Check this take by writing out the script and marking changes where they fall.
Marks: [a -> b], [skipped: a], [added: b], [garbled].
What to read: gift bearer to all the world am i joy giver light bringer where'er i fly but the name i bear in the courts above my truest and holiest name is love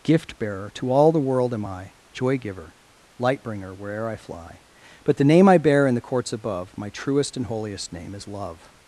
gift bearer to all the world am i joy giver light bringer where'er i fly but the name i bear in the courts above my truest and holiest name is love